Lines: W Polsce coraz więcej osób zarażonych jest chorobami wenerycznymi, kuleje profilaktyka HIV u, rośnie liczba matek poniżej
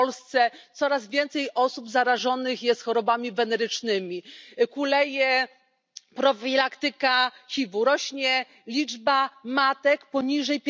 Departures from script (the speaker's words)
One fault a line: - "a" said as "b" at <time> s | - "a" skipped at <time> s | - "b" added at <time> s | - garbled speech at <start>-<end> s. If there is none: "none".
none